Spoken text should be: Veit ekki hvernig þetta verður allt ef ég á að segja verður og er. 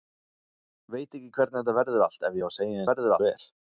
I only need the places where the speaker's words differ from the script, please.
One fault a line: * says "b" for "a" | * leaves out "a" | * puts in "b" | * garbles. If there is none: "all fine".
all fine